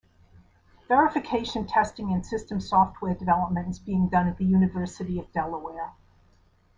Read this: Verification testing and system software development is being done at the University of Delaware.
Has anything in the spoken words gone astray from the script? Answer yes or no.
no